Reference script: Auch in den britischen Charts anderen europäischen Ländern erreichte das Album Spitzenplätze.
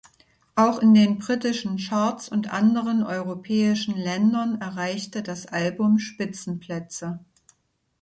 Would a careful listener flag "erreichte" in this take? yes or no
no